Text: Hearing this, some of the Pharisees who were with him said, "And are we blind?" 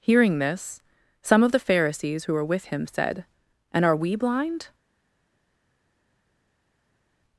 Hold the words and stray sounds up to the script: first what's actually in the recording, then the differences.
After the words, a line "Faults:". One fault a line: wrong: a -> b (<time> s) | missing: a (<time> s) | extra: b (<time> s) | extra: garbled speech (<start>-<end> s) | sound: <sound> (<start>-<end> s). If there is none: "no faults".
Hearing this, some of the Pharisees who were with him said, "And are we blind?"
Faults:
no faults